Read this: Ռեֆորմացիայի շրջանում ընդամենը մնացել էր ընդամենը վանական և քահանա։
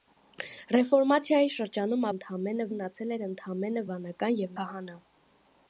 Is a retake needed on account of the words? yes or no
no